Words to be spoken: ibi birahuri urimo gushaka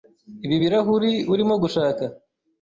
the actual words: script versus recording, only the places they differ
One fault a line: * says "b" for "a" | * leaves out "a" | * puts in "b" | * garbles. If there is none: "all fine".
all fine